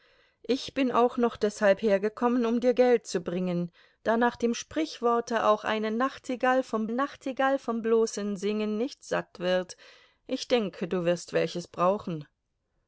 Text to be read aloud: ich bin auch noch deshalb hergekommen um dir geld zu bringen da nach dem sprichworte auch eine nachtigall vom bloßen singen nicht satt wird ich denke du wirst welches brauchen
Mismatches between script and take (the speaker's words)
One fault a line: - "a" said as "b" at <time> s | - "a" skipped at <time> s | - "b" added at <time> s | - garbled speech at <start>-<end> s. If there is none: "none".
- "nachtigall vom" added at 6.9 s